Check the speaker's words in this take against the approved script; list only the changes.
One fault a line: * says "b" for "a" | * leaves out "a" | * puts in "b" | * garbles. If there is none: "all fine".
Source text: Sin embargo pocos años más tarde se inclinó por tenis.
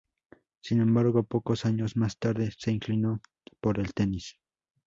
* puts in "el"